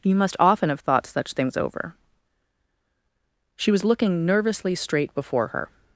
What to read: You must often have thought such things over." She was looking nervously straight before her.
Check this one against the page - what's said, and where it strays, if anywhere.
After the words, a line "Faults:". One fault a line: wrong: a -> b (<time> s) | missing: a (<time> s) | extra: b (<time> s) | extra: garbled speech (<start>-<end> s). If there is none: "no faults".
You must often have thought such things over." She was looking nervously straight before her.
Faults:
no faults